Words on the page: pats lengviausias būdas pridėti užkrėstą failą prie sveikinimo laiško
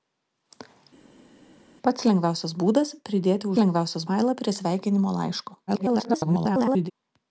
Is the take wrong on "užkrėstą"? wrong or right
wrong